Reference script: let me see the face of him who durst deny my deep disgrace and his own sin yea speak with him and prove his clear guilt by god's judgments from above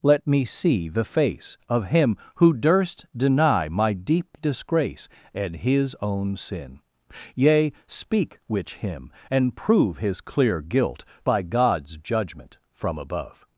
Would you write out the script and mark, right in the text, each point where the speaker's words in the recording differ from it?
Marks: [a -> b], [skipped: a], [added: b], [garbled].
let me see the face of him who durst deny my deep disgrace and his own sin yea speak [with -> which] him and prove his clear guilt by god's [judgments -> judgment] from above